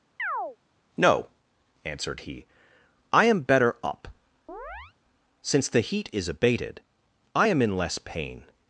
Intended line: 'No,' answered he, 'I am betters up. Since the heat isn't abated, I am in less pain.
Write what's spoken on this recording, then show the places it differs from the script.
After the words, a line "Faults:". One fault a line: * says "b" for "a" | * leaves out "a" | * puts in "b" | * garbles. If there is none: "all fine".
'No,' answered he, 'I am better up. Since the heat is abated, I am in less pain.
Faults:
* says "better" for "betters"
* says "is" for "isn't"